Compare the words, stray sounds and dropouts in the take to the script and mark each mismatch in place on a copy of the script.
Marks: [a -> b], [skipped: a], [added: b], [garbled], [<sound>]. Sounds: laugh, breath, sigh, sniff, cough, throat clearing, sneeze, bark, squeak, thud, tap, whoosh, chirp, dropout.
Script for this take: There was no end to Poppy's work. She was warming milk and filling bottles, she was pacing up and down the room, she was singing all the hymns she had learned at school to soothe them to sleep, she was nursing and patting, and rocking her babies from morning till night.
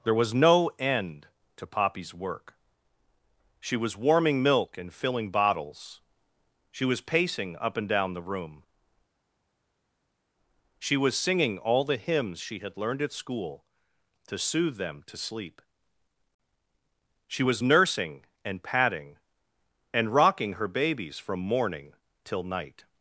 There was no end to Poppy's work. She was warming milk and filling bottles, she was pacing up and down the room, she was singing all the hymns she had learned at school to soothe them to sleep, she was nursing and patting, and rocking her babies from morning till night.